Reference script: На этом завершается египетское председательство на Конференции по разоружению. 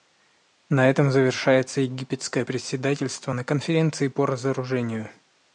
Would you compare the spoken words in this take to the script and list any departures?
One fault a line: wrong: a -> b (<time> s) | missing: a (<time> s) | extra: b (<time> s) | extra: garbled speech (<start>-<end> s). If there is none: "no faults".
no faults